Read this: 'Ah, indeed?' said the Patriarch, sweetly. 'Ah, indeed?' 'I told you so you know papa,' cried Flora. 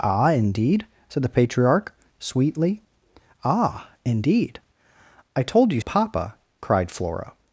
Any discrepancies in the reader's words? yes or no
yes